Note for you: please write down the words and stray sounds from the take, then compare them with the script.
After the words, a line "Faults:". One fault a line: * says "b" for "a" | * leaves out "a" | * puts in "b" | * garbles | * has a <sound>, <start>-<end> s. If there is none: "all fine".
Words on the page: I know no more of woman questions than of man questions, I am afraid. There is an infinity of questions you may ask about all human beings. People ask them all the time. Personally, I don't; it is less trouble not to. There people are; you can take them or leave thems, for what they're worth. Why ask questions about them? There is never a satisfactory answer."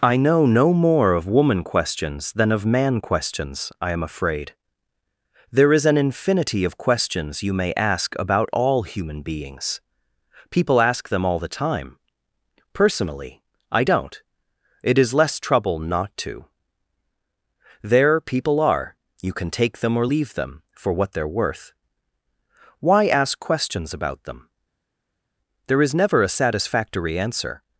I know no more of woman questions than of man questions, I am afraid. There is an infinity of questions you may ask about all human beings. People ask them all the time. Personally, I don't; it is less trouble not to. There people are; you can take them or leave them, for what they're worth. Why ask questions about them? There is never a satisfactory answer."
Faults:
* says "them" for "thems"